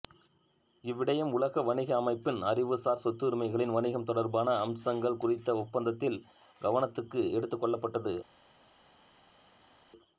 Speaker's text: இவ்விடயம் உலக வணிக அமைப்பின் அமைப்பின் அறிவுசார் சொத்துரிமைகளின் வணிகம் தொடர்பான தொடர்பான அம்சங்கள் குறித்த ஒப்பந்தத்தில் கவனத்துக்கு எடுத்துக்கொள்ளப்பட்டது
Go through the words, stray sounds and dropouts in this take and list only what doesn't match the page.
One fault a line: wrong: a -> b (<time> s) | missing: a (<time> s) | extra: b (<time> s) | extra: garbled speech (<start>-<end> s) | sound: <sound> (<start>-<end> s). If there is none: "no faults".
missing: அமைப்பின் (2.4 s)
missing: தொடர்பான (4.6 s)